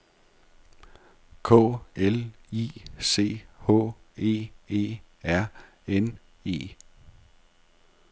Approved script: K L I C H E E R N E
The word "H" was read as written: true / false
true